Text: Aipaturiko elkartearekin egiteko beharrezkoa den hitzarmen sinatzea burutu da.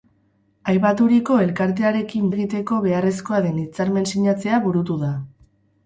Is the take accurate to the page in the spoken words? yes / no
yes